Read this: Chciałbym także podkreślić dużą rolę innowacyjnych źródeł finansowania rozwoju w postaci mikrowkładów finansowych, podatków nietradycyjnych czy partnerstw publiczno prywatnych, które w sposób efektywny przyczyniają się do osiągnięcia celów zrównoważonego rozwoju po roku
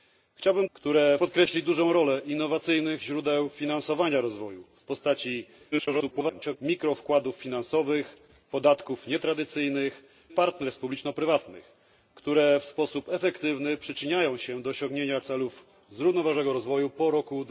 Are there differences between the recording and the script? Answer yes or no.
yes